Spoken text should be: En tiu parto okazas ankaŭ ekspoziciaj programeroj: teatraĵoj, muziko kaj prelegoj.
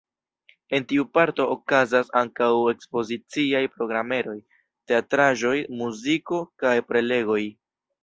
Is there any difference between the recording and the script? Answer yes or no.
no